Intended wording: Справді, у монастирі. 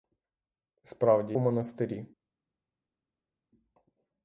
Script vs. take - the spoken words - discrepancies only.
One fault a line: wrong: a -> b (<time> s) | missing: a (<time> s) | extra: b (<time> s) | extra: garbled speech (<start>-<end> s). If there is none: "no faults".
no faults